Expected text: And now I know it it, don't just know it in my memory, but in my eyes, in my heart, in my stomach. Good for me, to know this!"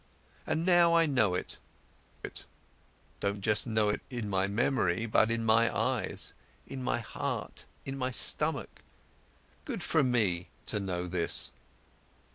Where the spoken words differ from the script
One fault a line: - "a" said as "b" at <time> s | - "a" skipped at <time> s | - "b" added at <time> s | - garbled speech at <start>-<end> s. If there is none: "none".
none